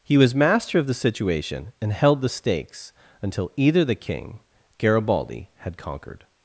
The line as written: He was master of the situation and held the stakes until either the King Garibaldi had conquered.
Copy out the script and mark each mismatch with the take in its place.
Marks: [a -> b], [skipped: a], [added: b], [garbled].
He was master of the situation and held the stakes until either the King Garibaldi had conquered.